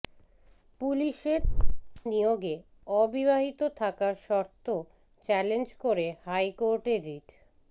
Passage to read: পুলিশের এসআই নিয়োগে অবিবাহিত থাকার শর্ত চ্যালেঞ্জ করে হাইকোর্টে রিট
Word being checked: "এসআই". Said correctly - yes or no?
no